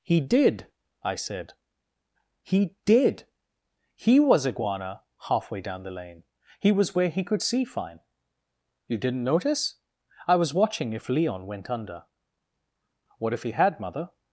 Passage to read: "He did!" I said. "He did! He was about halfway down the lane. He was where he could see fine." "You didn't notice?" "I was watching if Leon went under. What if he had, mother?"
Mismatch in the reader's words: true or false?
true